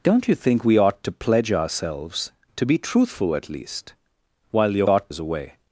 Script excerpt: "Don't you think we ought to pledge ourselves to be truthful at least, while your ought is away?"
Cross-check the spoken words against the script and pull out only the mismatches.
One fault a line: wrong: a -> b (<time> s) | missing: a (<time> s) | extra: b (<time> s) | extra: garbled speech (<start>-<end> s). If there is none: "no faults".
no faults